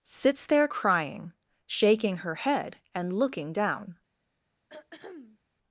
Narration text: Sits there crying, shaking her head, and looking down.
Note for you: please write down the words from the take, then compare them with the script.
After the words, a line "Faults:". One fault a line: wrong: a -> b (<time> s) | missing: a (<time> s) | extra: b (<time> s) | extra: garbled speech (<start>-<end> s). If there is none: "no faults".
Sits there crying, shaking her head, and looking down.
Faults:
no faults